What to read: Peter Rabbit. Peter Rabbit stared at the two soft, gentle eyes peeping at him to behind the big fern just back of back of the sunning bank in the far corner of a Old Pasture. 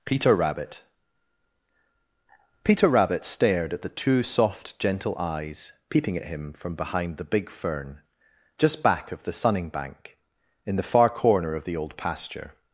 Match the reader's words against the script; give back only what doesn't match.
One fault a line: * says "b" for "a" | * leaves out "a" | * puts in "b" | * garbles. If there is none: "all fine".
* says "from" for "to"
* leaves out "back of"
* says "the" for "a"